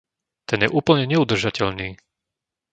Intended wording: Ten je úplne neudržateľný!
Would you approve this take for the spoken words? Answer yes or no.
yes